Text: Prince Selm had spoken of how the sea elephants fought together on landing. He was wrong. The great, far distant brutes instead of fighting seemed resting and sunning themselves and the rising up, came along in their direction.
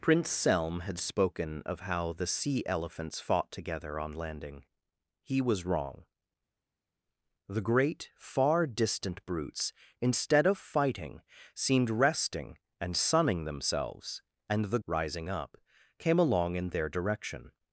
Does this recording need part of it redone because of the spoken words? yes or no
no